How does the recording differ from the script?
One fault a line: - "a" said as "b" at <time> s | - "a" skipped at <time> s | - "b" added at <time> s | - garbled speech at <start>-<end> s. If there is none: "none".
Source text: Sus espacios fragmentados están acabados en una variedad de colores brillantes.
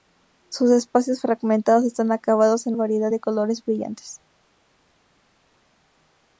- "una" skipped at 2.8 s